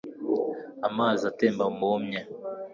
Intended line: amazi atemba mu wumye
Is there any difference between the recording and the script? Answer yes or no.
no